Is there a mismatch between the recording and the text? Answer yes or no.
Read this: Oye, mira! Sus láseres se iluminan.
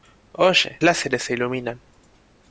yes